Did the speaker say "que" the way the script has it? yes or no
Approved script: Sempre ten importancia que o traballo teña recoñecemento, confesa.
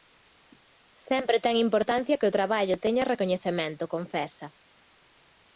yes